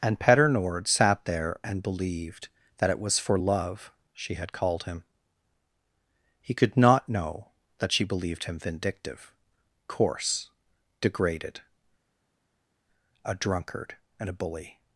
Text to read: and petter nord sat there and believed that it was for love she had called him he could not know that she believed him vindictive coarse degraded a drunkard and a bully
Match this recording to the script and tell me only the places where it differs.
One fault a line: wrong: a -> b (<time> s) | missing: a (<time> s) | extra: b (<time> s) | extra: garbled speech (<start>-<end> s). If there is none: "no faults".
no faults